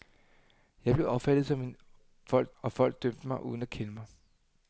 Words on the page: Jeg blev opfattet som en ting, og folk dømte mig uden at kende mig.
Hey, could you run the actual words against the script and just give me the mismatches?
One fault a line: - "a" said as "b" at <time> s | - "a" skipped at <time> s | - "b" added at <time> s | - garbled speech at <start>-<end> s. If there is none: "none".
- "ting" said as "folk" at 2.2 s